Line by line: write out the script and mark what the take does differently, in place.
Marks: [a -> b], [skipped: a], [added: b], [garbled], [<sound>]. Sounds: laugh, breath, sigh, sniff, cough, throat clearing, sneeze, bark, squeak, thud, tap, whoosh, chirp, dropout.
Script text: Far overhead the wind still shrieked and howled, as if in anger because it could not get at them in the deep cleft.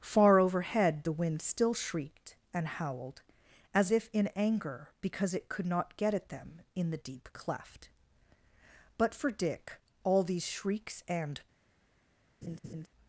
Far overhead the wind still shrieked and howled, as if in anger because it could not get at them in the deep cleft. [added: But for Dick all these shrieks and] [laugh]